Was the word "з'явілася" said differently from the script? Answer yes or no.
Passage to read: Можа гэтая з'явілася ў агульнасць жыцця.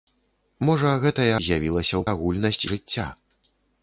no